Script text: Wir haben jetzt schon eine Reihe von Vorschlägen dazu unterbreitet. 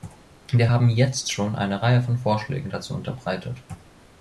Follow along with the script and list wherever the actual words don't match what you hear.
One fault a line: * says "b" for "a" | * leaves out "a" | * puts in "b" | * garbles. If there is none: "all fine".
all fine